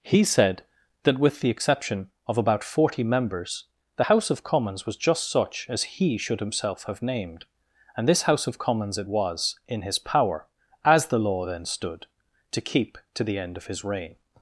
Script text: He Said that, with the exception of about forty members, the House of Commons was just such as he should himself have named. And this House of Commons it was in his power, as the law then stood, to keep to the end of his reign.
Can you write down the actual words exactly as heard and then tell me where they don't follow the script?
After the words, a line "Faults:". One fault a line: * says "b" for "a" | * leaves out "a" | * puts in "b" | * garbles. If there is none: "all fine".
He Said that, with the exception of about forty members, the House of Commons was just such as he should himself have named. And this House of Commons it was in his power, as the law then stood, to keep to the end of his reign.
Faults:
all fine